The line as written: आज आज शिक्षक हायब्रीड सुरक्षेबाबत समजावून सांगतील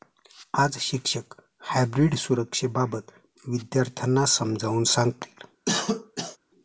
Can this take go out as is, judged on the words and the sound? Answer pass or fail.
fail